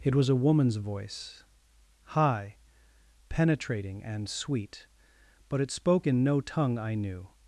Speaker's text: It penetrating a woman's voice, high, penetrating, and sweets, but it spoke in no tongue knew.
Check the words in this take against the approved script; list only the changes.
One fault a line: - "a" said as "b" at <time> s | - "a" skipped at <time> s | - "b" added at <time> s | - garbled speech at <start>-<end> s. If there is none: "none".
- "penetrating" said as "was" at 0.1 s
- "sweets" said as "sweet" at 4.3 s
- "I" added at 6.8 s